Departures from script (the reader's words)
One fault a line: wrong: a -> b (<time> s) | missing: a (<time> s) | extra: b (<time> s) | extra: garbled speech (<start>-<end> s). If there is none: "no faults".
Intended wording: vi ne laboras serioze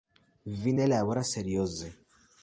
no faults